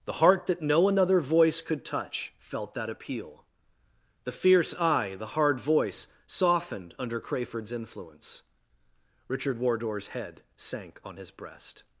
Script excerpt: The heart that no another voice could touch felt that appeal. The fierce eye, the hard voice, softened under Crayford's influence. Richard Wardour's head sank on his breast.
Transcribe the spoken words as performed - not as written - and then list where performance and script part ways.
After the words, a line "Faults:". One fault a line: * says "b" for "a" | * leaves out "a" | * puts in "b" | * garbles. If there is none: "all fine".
The heart that no another voice could touch felt that appeal. The fierce eye, the hard voice, softened under Crayford's influence. Richard Wardour's head sank on his breast.
Faults:
all fine